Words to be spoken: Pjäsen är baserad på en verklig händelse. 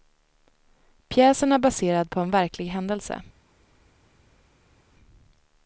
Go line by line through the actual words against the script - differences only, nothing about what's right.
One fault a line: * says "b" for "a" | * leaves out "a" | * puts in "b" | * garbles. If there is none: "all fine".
all fine